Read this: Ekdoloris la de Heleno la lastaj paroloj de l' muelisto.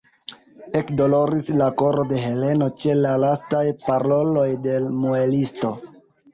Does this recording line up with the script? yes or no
no